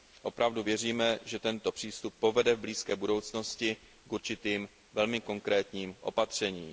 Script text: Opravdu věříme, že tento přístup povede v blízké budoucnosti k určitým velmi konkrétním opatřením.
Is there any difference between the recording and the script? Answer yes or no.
no